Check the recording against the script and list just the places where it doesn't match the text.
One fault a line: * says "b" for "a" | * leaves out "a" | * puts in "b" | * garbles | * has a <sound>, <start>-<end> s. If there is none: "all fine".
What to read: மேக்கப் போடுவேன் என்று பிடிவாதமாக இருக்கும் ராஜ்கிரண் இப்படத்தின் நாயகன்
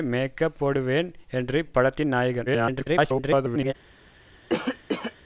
* leaves out "பிடிவாதமாக இருக்கும் ராஜ்கிரண்"
* garbles
* has a cough, 4.5-5.2 s